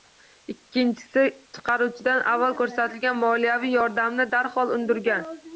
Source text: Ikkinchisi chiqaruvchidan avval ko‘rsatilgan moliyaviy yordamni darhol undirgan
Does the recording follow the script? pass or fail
pass